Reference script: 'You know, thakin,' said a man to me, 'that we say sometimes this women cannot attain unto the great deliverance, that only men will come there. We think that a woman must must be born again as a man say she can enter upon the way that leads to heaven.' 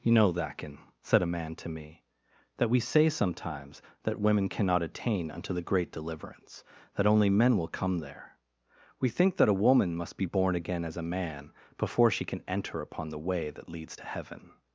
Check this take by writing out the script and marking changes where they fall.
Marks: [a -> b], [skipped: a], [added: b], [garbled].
'You know, thakin,' said a man to me, 'that we say sometimes [this -> that] women cannot attain unto the great deliverance, that only men will come there. We think that a woman must [skipped: must] be born again as a man [say -> before] she can enter upon the way that leads to heaven.'